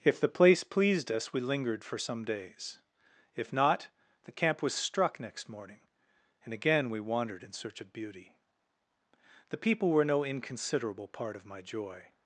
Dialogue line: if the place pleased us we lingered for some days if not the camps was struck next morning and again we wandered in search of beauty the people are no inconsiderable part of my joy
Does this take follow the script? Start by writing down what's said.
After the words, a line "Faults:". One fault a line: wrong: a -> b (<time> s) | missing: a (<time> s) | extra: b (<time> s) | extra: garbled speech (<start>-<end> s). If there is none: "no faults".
if the place pleased us we lingered for some days if not the camp was struck next morning and again we wandered in search of beauty the people were no inconsiderable part of my joy
Faults:
wrong: camps -> camp (4.3 s)
wrong: are -> were (9.9 s)